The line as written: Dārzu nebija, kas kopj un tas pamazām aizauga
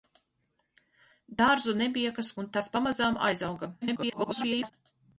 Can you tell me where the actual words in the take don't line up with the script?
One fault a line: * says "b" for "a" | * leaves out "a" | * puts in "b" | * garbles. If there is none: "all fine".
* leaves out "kopj"
* garbles